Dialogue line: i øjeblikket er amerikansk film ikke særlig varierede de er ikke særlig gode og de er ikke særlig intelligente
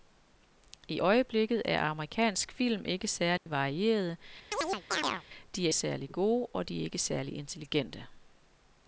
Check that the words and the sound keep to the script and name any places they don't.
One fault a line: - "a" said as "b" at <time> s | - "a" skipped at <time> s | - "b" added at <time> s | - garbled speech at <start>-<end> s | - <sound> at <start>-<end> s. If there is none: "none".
- dropout at 3.4-3.5 s
- chirp at 4.5-5.2 s
- "ikke" skipped at 5.7 s